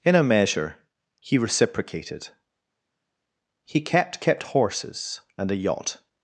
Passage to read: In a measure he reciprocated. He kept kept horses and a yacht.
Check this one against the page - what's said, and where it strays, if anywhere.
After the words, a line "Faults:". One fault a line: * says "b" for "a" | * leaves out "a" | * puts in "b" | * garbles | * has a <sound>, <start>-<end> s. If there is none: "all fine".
In a measure he reciprocated. He kept kept horses and a yacht.
Faults:
all fine